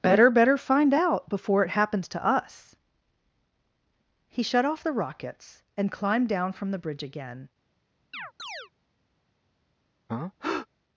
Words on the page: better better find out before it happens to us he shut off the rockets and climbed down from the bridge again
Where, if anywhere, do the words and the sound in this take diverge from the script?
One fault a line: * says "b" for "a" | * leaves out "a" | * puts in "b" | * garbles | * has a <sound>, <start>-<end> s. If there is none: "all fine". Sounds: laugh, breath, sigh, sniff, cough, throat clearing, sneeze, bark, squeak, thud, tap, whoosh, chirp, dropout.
* has a chirp, 8.1-8.7 s
* has a breath, 10.1-10.7 s